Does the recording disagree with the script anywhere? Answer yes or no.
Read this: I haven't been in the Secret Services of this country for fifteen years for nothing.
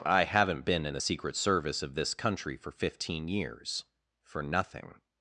yes